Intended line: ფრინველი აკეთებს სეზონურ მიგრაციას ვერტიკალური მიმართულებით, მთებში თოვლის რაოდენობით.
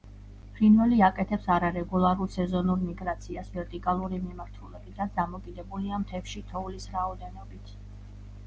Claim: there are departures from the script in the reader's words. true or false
true